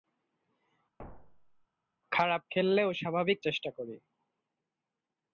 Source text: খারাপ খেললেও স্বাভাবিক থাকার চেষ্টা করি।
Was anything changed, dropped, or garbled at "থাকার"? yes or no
yes